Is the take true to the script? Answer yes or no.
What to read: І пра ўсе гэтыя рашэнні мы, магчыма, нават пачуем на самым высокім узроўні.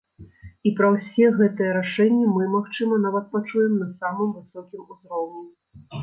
yes